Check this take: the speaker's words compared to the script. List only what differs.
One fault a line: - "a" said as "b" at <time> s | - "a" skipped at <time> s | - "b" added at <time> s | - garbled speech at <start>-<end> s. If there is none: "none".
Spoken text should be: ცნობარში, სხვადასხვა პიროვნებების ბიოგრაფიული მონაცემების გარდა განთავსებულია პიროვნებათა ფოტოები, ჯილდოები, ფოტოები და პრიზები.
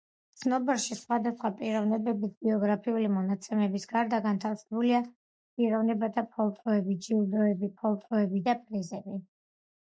none